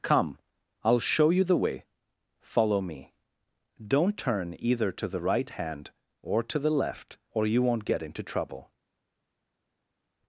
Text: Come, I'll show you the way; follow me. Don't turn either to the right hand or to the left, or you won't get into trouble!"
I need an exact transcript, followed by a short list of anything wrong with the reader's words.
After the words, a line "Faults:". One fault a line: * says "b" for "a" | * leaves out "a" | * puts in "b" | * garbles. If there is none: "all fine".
Come, I'll show you the way; follow me. Don't turn either to the right hand or to the left, or you won't get into trouble!"
Faults:
all fine